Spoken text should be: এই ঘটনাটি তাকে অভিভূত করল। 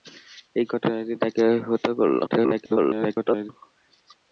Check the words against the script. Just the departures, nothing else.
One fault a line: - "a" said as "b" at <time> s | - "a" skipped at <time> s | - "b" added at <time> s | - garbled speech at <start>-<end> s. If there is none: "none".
- garbled speech at 2.3-3.5 s